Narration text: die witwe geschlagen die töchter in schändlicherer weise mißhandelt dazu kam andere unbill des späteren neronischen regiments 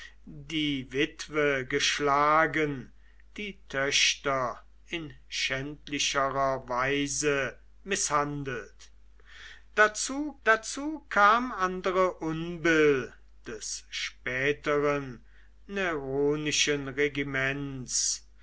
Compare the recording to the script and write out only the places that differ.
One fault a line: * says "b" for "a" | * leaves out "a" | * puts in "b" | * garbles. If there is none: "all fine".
* puts in "dazu"